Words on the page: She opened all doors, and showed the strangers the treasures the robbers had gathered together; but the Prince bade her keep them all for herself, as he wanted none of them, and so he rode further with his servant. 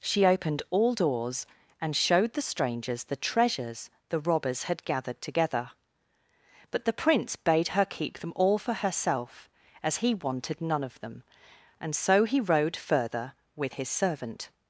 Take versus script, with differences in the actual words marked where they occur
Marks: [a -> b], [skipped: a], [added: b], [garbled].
She opened all doors, and showed the strangers the treasures the robbers had gathered together; but the Prince bade her keep them all for herself, as he wanted none of them, and so he rode further with his servant.